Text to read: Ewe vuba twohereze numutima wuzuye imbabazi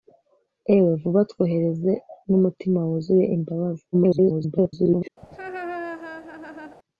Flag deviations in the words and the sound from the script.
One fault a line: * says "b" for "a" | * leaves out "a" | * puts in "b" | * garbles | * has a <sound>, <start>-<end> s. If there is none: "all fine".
* garbles
* has a laugh, 5.2-6.8 s